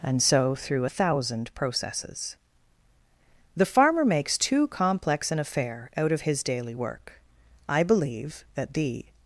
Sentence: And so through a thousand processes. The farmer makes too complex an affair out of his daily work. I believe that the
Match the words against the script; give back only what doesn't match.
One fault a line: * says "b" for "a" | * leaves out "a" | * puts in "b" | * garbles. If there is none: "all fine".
all fine